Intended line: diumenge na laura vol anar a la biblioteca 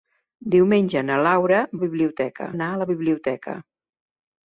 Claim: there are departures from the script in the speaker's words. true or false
true